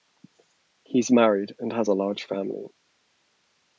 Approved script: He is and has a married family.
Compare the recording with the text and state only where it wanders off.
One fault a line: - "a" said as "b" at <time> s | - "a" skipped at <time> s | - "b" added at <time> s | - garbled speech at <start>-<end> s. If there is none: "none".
- "married" added at 1.1 s
- "married" said as "large" at 1.9 s